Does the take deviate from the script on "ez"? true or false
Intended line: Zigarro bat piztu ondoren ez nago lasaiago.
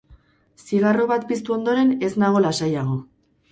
false